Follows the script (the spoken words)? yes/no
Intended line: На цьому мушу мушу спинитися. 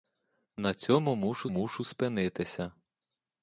yes